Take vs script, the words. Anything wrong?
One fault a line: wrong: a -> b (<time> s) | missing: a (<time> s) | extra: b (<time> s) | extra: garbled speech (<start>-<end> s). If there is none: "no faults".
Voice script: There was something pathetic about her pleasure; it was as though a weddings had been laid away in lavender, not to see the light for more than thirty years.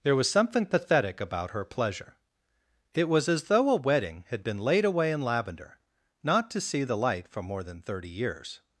wrong: weddings -> wedding (3.8 s)